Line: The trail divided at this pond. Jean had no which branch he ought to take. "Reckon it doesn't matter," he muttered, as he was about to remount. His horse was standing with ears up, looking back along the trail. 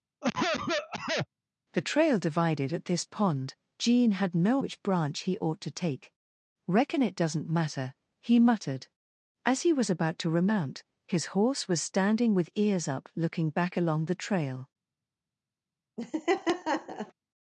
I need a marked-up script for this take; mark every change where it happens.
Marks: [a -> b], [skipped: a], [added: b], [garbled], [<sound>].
[cough] The trail divided at this pond. Jean had no which branch he ought to take. "Reckon it doesn't matter," he muttered, as he was about to remount. His horse was standing with ears up, looking back along the trail. [laugh]